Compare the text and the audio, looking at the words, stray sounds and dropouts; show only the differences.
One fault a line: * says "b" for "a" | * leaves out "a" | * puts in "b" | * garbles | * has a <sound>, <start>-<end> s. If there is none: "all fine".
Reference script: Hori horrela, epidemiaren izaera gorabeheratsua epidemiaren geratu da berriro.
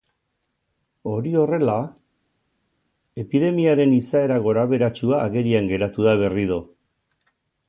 * says "agerian" for "epidemiaren"